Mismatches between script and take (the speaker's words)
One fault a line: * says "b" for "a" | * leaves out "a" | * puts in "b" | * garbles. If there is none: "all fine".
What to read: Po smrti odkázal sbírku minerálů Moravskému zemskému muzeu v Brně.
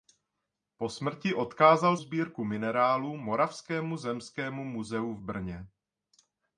all fine